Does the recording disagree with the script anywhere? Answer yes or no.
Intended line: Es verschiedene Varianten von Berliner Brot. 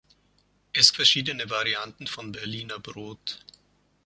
no